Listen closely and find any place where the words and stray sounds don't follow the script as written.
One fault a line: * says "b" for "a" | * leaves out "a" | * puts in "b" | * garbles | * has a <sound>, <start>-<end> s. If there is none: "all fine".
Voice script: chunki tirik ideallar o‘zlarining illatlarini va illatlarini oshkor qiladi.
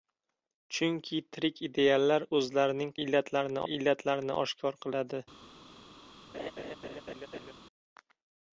* has a laugh, 6.3-7.5 s